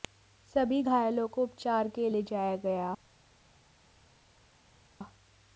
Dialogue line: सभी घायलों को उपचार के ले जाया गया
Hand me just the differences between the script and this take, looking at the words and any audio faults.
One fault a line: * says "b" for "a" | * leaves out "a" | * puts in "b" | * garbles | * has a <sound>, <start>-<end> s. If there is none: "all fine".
all fine